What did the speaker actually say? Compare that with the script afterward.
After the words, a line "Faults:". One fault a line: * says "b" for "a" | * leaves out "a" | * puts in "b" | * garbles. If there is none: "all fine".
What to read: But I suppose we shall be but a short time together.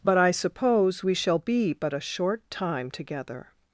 But I suppose we shall be but a short time together.
Faults:
all fine